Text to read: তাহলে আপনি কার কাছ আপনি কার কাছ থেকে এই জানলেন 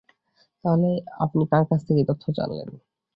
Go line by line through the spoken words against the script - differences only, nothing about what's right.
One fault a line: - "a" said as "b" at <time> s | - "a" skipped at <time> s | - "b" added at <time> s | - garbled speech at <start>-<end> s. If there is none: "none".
- "আপনি কার কাছ" skipped at 1.8 s
- "তথ্য" added at 2.1 s